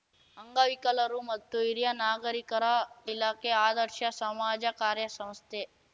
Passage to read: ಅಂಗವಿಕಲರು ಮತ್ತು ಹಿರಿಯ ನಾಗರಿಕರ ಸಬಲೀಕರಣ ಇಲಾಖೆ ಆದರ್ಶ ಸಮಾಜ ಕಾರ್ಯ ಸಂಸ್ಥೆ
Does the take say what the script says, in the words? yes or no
no